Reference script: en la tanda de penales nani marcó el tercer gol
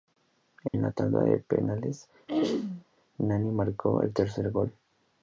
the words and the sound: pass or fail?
fail